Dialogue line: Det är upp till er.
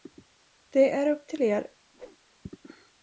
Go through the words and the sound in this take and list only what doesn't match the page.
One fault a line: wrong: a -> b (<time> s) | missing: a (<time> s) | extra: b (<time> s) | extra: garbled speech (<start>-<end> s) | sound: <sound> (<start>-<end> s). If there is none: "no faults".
sound: whoosh (1.9-2.2 s)